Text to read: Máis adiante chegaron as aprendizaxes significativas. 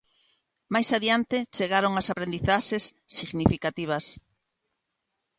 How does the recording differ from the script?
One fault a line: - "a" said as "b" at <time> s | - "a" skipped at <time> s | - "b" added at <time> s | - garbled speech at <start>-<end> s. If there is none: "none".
none